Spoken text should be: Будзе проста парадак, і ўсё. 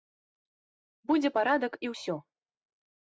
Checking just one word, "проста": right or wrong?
wrong